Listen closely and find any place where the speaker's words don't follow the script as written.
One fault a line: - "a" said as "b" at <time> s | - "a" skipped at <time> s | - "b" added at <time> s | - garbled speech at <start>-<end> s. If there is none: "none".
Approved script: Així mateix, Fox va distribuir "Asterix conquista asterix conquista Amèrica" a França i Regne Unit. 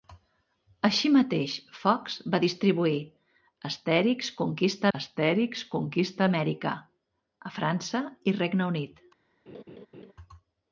none